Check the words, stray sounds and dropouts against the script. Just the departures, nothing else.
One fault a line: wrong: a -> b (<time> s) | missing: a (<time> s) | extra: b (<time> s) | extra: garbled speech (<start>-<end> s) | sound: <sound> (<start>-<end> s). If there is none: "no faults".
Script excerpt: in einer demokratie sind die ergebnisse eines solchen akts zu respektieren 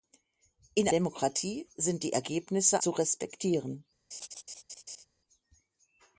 missing: einer (0.9 s)
missing: eines solchen akts (2.8 s)
sound: laugh (4.1-5.1 s)